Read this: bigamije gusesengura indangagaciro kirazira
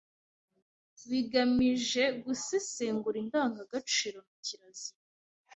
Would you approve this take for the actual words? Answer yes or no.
no